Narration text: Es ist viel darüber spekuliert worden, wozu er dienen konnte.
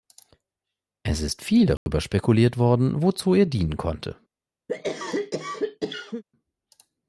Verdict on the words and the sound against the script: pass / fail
fail